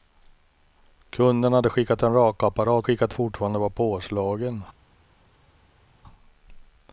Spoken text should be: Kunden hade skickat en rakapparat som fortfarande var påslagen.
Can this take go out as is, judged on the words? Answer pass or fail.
fail